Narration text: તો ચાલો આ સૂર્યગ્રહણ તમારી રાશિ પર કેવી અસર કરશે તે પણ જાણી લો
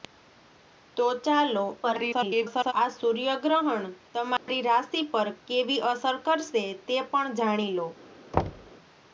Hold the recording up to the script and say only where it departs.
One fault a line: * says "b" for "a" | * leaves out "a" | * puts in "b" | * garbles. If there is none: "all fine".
* garbles